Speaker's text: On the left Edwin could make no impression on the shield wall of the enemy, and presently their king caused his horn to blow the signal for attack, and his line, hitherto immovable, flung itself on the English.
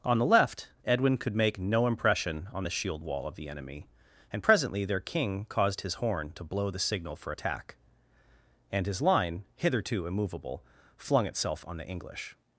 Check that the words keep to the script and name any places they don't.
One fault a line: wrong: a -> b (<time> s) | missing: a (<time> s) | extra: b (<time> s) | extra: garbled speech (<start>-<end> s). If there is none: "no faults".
no faults